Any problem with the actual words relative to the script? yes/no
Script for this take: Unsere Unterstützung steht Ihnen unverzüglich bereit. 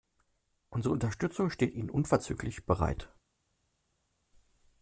no